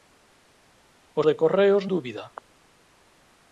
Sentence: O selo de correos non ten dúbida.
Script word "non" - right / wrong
wrong